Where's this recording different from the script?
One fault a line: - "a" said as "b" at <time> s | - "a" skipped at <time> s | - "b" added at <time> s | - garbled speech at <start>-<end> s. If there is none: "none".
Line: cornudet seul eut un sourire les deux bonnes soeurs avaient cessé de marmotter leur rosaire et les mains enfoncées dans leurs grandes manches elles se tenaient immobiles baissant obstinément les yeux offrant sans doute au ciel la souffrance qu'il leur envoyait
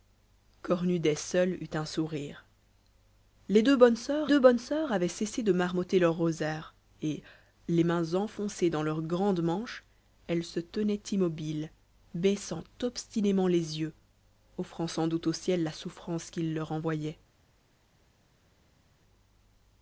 - "deux bonnes soeurs" added at 4.2 s